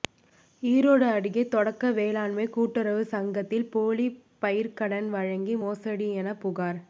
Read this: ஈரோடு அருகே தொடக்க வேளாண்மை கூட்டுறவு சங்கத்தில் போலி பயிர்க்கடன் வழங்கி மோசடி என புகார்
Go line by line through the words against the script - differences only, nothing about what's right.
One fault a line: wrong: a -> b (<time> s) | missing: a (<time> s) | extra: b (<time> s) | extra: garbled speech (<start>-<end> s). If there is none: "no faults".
no faults